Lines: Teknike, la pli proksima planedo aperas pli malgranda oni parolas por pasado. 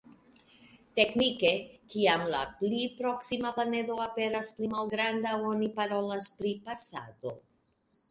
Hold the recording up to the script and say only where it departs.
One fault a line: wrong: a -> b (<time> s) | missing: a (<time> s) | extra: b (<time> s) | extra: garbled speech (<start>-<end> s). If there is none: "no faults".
extra: kiam (1.9 s)
wrong: por -> pri (6.4 s)